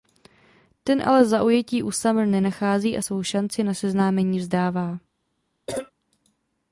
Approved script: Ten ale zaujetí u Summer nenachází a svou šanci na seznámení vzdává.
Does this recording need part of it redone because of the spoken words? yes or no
no